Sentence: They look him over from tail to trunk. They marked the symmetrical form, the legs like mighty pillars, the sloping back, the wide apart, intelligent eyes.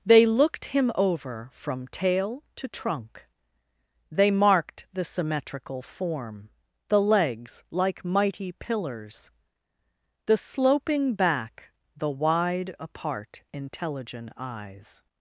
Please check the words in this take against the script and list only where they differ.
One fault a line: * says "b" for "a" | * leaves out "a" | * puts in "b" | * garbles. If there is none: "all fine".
* says "looked" for "look"